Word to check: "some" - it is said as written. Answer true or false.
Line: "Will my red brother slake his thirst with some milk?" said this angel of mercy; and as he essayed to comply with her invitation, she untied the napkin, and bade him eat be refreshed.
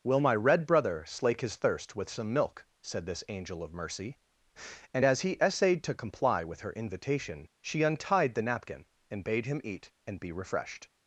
true